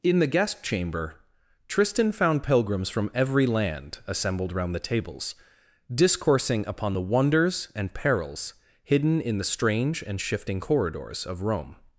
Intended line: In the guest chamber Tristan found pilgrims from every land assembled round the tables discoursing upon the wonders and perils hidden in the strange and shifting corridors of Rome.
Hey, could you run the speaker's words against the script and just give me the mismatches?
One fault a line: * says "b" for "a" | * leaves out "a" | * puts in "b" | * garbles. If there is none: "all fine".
all fine